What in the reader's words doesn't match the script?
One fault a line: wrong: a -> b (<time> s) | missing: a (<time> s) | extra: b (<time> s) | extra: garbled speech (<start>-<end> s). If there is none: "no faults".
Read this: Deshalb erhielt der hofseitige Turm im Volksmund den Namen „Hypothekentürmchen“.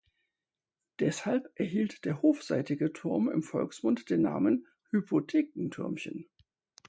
no faults